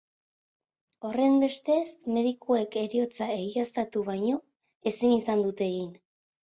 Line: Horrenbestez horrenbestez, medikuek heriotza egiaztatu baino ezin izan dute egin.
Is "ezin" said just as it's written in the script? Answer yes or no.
yes